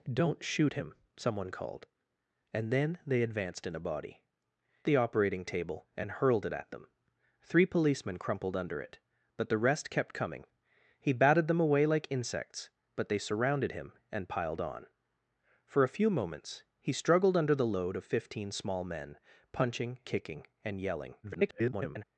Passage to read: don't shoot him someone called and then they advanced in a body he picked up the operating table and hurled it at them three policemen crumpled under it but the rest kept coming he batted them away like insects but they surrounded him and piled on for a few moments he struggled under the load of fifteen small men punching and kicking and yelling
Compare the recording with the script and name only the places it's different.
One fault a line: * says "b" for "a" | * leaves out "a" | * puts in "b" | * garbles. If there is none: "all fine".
* leaves out "he picked up"
* leaves out "and"
* garbles